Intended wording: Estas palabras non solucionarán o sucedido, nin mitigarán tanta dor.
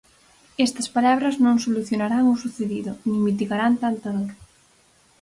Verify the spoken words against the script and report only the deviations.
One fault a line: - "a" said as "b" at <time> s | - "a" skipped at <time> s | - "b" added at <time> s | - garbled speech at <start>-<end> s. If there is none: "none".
none